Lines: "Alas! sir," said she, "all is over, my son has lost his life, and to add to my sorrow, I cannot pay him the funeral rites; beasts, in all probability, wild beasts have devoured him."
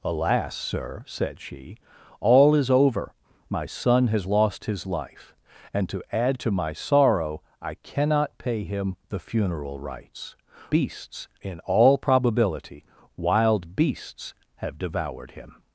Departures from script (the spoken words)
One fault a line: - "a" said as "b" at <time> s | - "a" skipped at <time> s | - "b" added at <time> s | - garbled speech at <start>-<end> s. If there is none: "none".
none